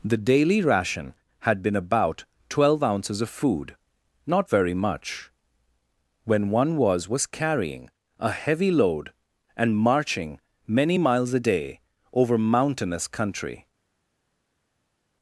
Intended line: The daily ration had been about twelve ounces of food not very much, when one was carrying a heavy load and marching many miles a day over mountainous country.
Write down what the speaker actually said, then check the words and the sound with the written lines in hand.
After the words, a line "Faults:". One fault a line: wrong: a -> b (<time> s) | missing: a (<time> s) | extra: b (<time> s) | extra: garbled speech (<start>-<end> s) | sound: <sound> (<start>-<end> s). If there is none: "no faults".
The daily ration had been about twelve ounces of food not very much, when one was was carrying a heavy load and marching many miles a day over mountainous country.
Faults:
extra: was (7.1 s)